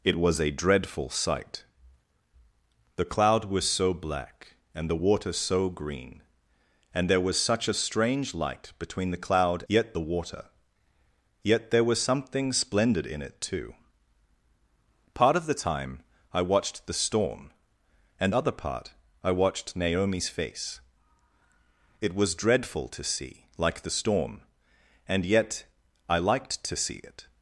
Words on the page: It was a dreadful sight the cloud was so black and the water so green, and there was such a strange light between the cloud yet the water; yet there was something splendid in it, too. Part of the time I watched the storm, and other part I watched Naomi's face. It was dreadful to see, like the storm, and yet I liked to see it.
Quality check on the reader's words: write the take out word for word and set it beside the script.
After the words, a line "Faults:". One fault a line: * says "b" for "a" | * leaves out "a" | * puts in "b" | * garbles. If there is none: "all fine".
It was a dreadful sight the cloud was so black and the water so green, and there was such a strange light between the cloud yet the water; yet there was something splendid in it, too. Part of the time I watched the storm, and other part I watched Naomi's face. It was dreadful to see, like the storm, and yet I liked to see it.
Faults:
all fine